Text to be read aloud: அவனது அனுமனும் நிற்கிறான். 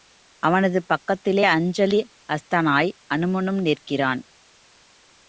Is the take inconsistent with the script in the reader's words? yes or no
yes